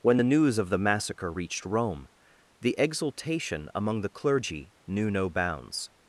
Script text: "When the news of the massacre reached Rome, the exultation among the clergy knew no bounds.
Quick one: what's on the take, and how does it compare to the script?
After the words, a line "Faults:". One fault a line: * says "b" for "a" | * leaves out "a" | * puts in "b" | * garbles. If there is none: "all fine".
"When the news of the massacre reached Rome, the exultation among the clergy knew no bounds.
Faults:
all fine